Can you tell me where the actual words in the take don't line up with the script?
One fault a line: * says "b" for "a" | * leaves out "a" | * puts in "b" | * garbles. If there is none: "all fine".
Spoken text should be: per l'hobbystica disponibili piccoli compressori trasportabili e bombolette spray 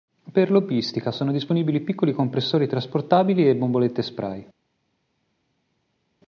* puts in "sono"